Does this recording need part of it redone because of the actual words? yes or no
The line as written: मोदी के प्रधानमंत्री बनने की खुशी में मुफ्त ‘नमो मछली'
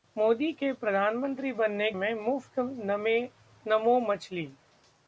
yes